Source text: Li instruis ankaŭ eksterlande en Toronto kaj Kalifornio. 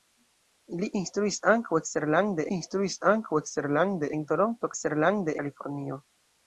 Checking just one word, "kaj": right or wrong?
wrong